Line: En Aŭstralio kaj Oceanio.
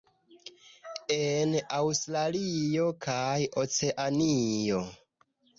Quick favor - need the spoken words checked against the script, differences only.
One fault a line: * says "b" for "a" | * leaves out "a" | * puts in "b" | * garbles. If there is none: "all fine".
all fine